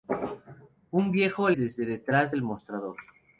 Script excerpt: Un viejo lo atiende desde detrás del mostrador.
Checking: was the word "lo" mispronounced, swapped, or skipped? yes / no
yes